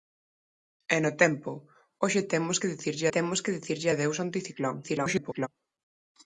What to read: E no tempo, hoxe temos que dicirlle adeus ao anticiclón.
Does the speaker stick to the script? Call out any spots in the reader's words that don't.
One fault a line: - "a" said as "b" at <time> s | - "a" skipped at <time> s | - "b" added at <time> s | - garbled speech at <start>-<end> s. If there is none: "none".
- "temos que dicirlle" added at 3.1 s
- garbled speech at 4.8-5.5 s